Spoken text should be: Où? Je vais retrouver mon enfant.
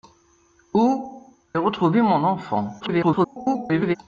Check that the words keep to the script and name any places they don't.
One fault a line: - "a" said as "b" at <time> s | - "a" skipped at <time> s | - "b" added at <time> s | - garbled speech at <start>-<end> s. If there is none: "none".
- "Je vais" skipped at 1.4 s
- garbled speech at 2.8-4.0 s